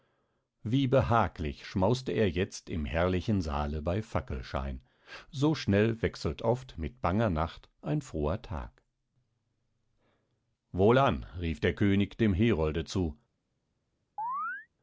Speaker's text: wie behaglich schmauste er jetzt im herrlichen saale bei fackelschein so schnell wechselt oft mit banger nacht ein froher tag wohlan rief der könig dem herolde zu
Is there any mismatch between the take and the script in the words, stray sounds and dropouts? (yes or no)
yes